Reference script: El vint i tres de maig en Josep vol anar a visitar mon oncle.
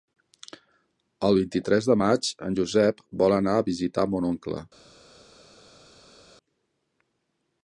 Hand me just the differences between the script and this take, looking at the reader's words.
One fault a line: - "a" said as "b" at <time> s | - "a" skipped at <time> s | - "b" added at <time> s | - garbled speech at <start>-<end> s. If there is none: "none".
none